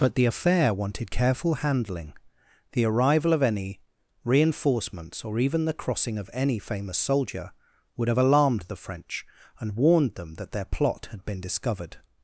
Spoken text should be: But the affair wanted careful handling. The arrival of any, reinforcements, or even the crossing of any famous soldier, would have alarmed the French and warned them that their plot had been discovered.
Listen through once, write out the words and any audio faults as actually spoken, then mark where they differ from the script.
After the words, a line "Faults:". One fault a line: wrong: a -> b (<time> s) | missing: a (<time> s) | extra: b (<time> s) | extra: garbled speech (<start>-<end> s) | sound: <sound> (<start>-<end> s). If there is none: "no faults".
But the affair wanted careful handling. The arrival of any, reinforcements, or even the crossing of any famous soldier, would have alarmed the French and warned them that their plot had been discovered.
Faults:
no faults